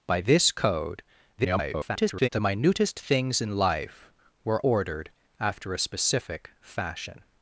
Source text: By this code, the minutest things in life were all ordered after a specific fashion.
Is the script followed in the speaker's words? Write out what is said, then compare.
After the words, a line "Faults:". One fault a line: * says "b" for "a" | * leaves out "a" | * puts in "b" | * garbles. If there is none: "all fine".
By this code, [garbled] the minutest things in life were ordered after a specific fashion.
Faults:
* garbles
* leaves out "all"